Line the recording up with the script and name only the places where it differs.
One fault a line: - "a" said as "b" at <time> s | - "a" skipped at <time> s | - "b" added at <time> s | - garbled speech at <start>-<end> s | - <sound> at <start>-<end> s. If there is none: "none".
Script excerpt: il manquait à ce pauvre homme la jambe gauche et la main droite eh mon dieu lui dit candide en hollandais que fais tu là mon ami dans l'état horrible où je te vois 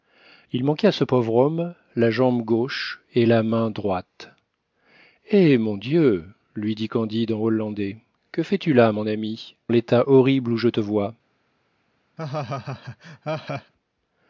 - "dans" skipped at 9.6 s
- laugh at 12.2-13.7 s